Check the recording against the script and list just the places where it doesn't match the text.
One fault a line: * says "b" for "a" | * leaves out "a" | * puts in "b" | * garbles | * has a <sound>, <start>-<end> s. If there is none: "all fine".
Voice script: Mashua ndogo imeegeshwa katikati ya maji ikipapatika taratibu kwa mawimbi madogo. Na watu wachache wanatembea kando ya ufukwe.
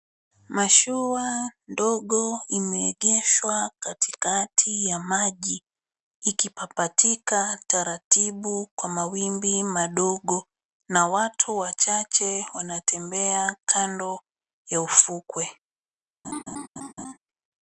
* has a laugh, 16.2-17.2 s